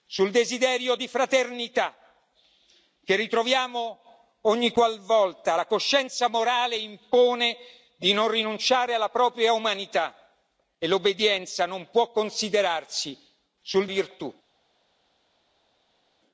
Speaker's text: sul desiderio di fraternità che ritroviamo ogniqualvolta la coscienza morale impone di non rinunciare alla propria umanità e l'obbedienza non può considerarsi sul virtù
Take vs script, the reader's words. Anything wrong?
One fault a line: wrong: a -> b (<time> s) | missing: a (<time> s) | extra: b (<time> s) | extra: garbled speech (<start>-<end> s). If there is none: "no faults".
no faults